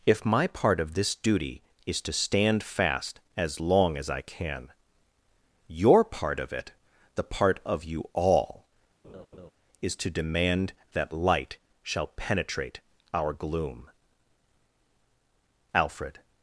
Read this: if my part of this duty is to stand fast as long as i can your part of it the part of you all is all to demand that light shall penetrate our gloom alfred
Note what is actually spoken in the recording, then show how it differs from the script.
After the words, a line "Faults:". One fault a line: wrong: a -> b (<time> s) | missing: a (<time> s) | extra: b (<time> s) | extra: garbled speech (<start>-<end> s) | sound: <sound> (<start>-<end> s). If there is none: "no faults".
if my part of this duty is to stand fast as long as i can your part of it the part of you all is to demand that light shall penetrate our gloom alfred
Faults:
sound: laugh (9.0-9.5 s)
missing: all (10.0 s)